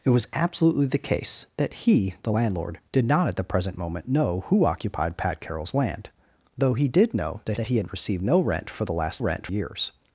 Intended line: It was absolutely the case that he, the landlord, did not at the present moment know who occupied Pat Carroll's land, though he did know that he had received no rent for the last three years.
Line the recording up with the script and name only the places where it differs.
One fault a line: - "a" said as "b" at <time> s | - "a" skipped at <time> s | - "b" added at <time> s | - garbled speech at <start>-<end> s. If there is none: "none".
- "that" added at 7.6 s
- "three" said as "rent" at 9.2 s